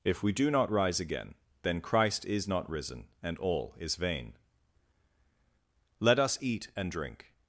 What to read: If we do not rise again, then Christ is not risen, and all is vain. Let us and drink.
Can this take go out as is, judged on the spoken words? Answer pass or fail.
fail